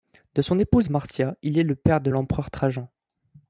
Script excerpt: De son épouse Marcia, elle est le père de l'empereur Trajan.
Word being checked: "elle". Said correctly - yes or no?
no